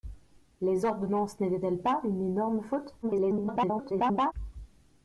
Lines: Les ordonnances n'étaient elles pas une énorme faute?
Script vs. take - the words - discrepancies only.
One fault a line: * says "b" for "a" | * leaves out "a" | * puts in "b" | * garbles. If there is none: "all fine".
* garbles